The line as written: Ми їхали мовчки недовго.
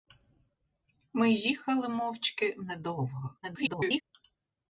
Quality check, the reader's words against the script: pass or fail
fail